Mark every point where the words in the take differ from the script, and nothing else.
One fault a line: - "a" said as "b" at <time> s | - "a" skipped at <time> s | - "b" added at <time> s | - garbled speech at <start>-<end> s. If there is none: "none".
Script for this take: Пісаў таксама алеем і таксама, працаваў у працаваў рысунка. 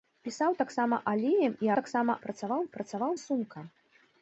none